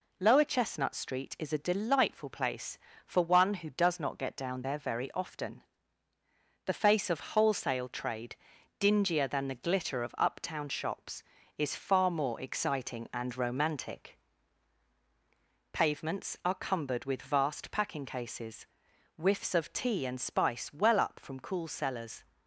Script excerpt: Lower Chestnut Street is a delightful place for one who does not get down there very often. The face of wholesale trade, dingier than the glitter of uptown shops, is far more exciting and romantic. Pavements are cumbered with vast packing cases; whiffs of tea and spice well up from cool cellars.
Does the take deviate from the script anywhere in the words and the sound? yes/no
no